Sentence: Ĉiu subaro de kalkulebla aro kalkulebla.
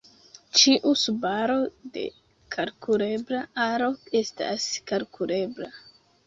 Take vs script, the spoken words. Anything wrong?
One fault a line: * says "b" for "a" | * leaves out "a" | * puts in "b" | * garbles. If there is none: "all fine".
* puts in "estas"